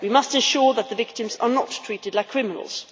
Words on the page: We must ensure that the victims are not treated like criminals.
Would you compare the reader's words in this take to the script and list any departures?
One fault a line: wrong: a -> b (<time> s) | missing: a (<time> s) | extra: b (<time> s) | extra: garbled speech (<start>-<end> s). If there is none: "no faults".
no faults